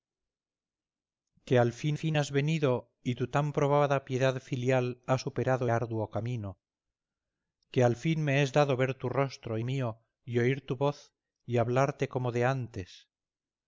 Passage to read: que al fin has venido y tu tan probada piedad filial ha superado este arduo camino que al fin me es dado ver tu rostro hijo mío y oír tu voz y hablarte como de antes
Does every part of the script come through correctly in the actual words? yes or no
no